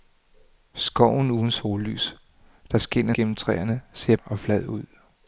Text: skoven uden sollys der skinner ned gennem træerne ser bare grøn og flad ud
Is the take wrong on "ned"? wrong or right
wrong